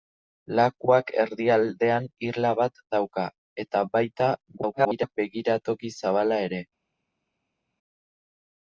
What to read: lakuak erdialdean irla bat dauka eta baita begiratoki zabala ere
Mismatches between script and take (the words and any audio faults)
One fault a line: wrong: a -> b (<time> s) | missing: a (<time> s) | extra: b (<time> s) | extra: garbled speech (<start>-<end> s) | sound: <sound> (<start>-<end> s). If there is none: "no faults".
extra: garbled speech (4.6-5.2 s)